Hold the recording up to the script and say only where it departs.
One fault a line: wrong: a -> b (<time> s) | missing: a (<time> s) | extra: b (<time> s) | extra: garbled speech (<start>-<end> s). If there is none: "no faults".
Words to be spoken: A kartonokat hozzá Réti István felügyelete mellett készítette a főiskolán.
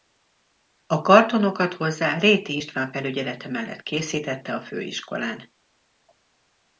no faults